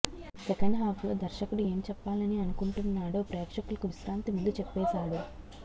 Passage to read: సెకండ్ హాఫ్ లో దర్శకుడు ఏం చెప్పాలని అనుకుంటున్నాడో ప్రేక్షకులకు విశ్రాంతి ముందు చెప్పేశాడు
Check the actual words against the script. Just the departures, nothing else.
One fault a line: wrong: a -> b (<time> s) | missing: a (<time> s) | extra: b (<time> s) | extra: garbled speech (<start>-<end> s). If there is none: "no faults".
no faults